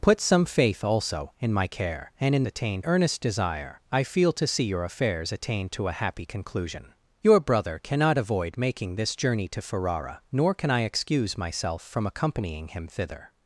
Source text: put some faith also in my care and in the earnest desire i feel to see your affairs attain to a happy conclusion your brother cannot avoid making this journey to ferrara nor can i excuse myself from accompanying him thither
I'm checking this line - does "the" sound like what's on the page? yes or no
no